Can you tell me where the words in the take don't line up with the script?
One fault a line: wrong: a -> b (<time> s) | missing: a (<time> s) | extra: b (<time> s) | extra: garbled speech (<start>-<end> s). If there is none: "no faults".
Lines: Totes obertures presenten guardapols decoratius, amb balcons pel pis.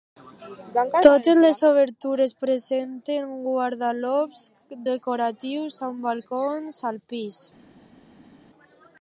extra: les (1.4 s)
wrong: pel -> al (6.9 s)